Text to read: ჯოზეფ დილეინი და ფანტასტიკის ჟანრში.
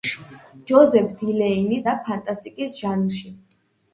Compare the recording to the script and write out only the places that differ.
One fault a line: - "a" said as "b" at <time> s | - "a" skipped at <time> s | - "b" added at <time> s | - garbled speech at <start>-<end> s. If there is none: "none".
none